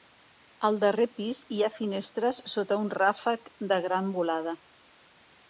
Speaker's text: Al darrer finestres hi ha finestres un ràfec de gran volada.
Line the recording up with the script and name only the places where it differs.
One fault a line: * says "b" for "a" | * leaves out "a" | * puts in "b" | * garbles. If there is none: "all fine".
* says "pis" for "finestres"
* puts in "sota"